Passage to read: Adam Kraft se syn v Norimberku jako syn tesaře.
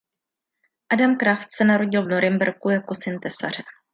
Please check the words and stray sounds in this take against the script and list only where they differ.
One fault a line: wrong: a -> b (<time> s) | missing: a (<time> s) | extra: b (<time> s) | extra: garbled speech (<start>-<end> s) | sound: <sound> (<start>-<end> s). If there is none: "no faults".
wrong: syn -> narodil (1.7 s)